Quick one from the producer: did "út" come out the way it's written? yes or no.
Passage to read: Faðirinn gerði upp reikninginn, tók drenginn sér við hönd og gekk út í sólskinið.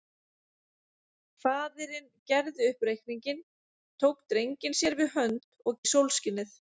no